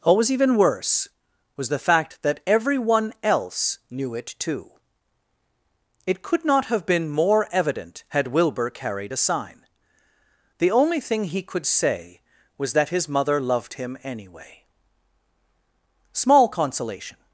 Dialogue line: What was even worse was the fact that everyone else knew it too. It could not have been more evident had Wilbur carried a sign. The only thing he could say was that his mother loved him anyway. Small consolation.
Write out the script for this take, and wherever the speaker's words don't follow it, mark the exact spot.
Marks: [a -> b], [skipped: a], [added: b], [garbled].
What was even worse was the fact that everyone else knew it too. It could not have been more evident had Wilbur carried a sign. The only thing he could say was that his mother loved him anyway. Small consolation.